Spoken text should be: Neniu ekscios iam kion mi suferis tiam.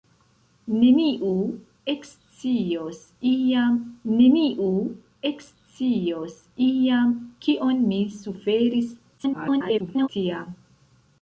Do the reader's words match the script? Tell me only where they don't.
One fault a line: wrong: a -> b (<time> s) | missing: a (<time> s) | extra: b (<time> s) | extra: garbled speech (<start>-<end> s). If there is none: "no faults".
extra: neniu ekscios iam (4.1 s)
extra: garbled speech (9.2-10.1 s)